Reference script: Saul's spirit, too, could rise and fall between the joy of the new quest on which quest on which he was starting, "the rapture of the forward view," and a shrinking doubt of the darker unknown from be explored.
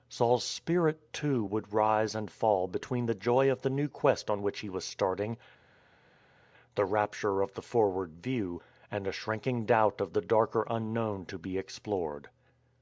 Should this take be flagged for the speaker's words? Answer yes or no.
yes